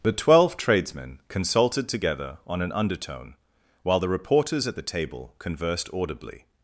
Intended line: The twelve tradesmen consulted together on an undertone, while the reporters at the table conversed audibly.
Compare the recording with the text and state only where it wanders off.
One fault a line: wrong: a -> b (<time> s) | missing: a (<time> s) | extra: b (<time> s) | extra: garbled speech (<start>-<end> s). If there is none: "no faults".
no faults